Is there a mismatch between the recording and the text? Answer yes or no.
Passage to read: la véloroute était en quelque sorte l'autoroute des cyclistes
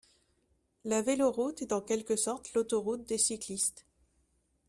yes